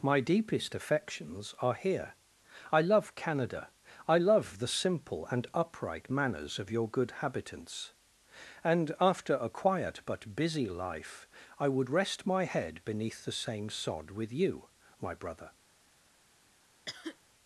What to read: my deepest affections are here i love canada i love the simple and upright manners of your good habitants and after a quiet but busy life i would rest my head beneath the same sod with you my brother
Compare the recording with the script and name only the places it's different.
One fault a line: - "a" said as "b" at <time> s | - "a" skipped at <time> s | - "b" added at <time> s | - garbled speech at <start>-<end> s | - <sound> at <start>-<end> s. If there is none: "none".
- cough at 16.9-17.2 s